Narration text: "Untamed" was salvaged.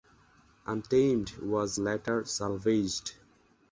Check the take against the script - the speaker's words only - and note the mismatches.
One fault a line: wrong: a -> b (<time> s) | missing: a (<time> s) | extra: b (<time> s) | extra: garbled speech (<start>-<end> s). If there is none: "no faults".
extra: later (1.8 s)